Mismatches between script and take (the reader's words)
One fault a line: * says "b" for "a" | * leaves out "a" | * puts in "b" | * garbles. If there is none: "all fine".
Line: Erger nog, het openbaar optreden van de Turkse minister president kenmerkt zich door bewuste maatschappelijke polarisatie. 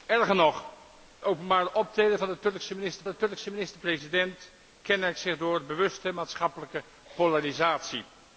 * leaves out "het"
* puts in "de Turkse minister"